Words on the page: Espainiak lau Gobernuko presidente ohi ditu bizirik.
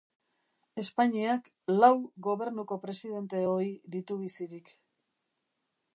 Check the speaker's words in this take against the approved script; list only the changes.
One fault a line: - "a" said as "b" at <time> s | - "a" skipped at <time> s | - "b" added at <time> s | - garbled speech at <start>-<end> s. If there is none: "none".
none